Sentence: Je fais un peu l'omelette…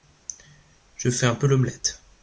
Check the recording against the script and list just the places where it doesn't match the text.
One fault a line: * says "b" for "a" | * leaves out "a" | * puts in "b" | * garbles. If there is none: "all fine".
all fine